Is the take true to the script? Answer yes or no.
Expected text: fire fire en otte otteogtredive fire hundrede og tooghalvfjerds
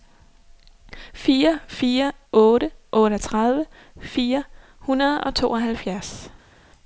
no